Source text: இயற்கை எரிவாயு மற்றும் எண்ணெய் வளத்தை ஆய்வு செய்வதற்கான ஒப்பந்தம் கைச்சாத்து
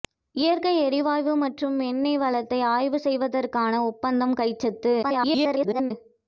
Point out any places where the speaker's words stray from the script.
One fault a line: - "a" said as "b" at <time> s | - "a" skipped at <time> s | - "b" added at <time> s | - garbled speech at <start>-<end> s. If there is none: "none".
- garbled speech at 5.0-5.9 s